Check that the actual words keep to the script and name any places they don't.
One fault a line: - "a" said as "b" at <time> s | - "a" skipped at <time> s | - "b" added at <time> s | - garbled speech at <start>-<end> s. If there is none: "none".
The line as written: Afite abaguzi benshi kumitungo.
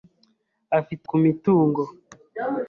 - "abaguzi benshi" skipped at 1.1 s